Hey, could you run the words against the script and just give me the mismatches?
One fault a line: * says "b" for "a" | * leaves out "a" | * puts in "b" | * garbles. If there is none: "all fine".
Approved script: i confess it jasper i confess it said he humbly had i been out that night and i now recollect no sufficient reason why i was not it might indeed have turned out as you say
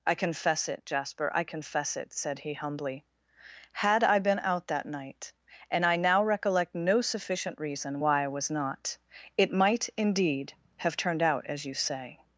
all fine